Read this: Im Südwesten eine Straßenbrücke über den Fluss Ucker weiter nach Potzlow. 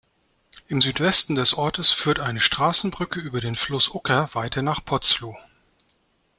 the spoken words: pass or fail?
fail